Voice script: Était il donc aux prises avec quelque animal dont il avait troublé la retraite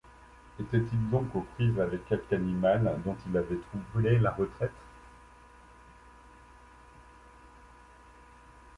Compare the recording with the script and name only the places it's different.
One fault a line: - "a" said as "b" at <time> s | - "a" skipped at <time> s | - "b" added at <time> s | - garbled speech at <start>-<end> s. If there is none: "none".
none